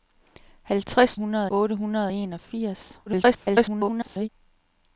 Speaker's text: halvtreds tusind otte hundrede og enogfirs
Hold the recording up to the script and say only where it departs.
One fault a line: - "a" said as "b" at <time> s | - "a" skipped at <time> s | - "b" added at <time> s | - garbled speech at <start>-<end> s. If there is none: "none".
- "tusind" said as "hundrede" at 1.1 s
- garbled speech at 3.1-4.3 s